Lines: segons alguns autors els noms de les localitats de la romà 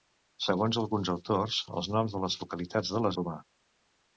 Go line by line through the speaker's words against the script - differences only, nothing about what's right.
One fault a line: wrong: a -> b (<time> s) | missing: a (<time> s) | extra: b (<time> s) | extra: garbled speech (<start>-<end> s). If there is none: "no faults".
no faults